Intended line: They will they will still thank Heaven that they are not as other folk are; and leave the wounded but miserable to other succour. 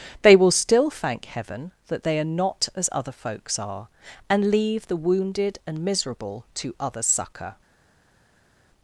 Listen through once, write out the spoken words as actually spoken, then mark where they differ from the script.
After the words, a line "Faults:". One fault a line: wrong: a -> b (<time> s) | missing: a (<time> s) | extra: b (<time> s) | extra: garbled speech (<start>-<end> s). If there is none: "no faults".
They will still thank Heaven that they are not as other folks are; and leave the wounded and miserable to other succour.
Faults:
missing: they will (0.5 s)
wrong: folk -> folks (3.1 s)
wrong: but -> and (5.7 s)